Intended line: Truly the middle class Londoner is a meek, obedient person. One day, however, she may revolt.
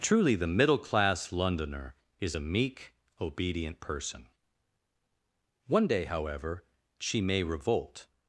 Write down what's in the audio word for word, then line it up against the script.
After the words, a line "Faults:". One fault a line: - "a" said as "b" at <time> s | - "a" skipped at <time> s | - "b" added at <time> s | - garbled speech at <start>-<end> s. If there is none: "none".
Truly the middle class Londoner is a meek, obedient person. One day, however, she may revolt.
Faults:
none